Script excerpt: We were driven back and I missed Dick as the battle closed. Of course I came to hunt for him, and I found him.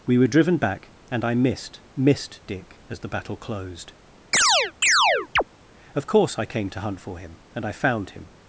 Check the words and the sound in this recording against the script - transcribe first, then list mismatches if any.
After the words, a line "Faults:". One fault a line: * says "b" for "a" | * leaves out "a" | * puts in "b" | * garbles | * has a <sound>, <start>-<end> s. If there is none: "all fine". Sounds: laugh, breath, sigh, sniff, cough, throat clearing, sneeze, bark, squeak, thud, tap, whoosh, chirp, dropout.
We were driven back and I missed missed Dick as the battle closed. Of course I came to hunt for him, and I found him.
Faults:
* puts in "missed"
* has a chirp, 4.3-5.4 s